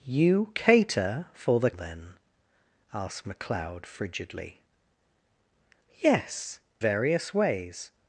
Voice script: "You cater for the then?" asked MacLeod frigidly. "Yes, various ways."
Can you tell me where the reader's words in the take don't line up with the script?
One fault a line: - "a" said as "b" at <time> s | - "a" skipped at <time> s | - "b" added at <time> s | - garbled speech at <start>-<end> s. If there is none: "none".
none